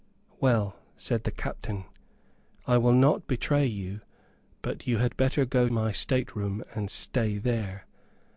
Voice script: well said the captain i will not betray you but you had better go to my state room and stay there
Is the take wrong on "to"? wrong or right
wrong